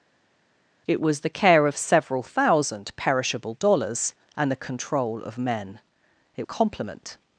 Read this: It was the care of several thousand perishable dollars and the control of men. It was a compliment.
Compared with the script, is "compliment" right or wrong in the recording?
right